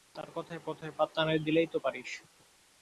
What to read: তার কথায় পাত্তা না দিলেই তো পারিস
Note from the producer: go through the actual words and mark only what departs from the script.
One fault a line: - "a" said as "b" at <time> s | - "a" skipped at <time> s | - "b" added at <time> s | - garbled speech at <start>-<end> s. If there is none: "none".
- "কথায়" added at 0.7 s